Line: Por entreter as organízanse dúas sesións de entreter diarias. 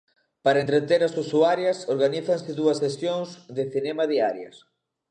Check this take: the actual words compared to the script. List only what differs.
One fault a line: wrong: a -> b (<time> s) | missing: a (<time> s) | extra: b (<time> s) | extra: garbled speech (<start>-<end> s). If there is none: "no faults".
wrong: Por -> Para (0.5 s)
extra: usuarias (1.2 s)
wrong: entreter -> cinema (3.7 s)